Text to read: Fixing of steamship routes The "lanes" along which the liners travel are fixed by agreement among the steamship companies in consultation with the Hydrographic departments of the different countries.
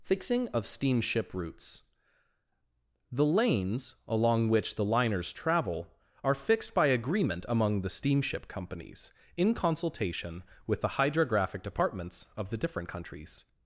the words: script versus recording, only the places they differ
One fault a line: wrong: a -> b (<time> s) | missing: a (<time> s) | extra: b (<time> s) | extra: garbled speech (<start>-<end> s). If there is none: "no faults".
no faults